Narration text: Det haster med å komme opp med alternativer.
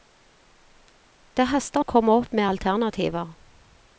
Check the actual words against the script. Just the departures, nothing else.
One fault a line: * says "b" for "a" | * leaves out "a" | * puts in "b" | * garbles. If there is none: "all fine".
* leaves out "med"